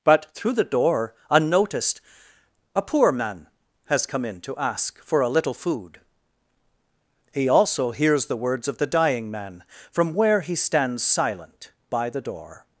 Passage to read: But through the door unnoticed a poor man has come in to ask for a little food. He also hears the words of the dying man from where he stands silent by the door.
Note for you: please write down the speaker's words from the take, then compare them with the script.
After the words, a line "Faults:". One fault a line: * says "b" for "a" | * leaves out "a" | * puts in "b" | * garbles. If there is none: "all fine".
But through the door unnoticed a poor man has come in to ask for a little food. He also hears the words of the dying man from where he stands silent by the door.
Faults:
all fine